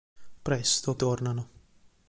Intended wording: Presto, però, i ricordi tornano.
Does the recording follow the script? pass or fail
fail